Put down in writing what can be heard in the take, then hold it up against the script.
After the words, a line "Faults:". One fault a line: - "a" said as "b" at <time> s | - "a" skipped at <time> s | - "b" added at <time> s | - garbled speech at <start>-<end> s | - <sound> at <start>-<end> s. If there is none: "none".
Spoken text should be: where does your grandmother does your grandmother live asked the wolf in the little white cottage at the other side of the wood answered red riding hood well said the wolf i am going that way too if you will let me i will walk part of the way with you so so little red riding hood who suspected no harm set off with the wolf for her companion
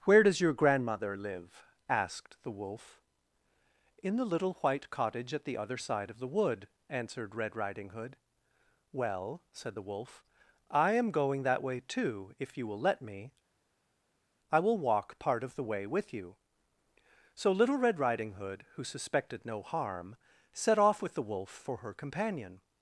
where does your grandmother live asked the wolf in the little white cottage at the other side of the wood answered red riding hood well said the wolf i am going that way too if you will let me i will walk part of the way with you so little red riding hood who suspected no harm set off with the wolf for her companion
Faults:
- "does your grandmother" skipped at 1.1 s
- "so" skipped at 17.5 s